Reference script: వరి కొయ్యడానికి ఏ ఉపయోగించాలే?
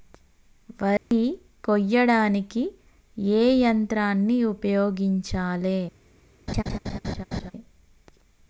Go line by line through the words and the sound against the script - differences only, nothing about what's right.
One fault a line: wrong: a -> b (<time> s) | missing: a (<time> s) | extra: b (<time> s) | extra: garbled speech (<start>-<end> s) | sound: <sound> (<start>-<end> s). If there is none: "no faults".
sound: dropout (1.0-1.1 s)
extra: యంత్రాన్ని (3.6 s)
sound: laugh (6.5-7.5 s)